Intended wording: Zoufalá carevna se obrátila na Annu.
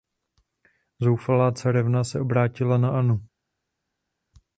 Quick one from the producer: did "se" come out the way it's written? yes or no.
yes